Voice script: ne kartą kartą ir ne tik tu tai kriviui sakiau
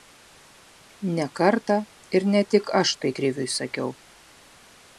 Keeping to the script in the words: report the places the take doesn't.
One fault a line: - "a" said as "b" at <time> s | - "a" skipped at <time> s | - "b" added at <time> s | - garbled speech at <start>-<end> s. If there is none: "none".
- "kartą" skipped at 1.8 s
- "tu" said as "aš" at 2.8 s